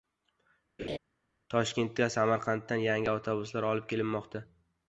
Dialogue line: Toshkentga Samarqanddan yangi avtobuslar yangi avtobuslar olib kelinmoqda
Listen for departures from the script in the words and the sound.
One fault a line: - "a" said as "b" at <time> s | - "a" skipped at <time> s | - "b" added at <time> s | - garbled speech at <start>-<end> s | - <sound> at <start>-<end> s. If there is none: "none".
- laugh at 0.8-1.0 s
- "yangi avtobuslar" skipped at 3.7 s